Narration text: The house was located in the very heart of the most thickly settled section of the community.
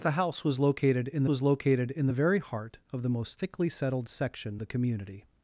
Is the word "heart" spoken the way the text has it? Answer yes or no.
yes